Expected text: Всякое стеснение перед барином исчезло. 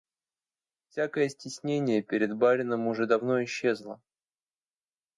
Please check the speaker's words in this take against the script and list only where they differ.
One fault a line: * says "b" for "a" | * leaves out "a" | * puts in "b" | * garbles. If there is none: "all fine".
* puts in "уже давно"